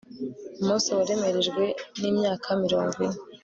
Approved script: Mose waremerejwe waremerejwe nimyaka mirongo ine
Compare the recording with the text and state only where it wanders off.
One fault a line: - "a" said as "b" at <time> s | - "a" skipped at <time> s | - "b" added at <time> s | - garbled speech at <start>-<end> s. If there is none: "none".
- "waremerejwe" skipped at 1.6 s